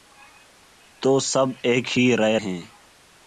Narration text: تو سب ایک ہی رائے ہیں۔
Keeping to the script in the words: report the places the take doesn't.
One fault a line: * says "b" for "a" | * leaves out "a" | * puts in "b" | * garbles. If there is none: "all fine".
all fine